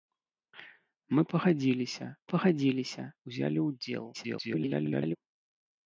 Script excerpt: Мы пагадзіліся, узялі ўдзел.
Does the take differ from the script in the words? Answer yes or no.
yes